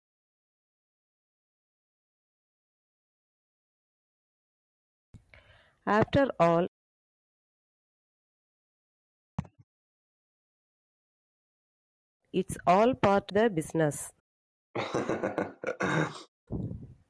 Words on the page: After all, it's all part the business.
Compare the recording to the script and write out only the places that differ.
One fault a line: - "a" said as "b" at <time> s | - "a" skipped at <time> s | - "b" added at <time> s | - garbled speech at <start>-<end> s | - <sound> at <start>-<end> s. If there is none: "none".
- laugh at 9.4-9.6 s
- laugh at 14.7-16.3 s